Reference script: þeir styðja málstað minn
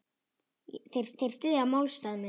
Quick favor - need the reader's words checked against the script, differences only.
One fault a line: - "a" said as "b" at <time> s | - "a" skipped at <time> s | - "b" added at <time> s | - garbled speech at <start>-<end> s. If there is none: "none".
- "þeir" added at 1.2 s